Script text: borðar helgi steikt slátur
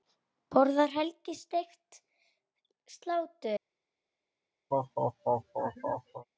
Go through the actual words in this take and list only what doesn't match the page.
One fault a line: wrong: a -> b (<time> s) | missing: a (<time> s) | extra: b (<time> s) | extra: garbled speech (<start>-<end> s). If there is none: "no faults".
no faults